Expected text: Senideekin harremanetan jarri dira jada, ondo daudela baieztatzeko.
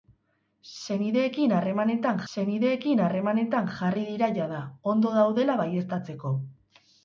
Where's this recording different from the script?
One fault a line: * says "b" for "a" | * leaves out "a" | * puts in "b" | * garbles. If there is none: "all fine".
* puts in "senideekin harremanetan"